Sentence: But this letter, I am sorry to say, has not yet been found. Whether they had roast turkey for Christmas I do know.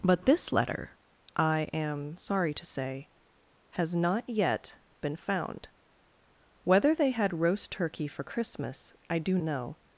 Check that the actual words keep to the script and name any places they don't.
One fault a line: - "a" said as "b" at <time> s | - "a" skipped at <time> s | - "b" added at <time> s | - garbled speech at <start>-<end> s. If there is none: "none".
none